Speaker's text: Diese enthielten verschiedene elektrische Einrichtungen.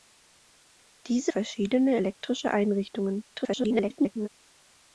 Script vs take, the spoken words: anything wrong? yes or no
yes